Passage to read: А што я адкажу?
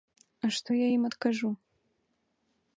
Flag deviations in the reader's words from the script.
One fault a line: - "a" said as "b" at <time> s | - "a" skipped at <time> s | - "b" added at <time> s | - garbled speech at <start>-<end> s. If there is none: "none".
- "ім" added at 1.0 s